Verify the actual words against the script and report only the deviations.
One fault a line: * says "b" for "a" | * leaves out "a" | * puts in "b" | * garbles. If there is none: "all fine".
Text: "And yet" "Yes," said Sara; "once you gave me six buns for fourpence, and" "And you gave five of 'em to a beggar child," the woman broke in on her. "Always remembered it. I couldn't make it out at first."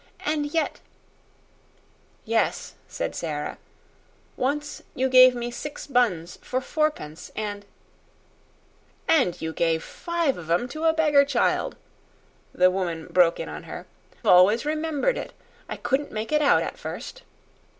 all fine